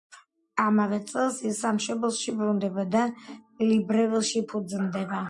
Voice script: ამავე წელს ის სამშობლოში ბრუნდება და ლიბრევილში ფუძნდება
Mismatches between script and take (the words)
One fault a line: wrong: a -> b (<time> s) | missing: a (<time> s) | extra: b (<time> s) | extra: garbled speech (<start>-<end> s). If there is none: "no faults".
no faults